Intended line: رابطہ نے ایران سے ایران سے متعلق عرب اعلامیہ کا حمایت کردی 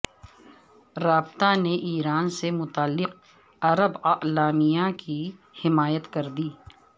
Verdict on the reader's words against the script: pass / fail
fail